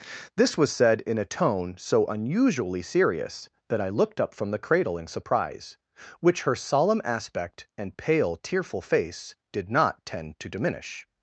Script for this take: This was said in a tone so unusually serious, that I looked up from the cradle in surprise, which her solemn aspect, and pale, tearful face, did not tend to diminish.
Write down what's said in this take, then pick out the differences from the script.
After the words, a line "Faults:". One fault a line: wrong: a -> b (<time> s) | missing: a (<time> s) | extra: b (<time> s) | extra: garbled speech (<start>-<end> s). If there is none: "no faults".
This was said in a tone so unusually serious, that I looked up from the cradle in surprise, which her solemn aspect, and pale, tearful face, did not tend to diminish.
Faults:
no faults